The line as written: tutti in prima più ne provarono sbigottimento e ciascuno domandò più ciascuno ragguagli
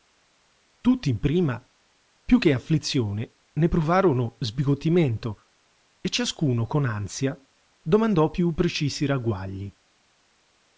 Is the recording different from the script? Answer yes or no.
yes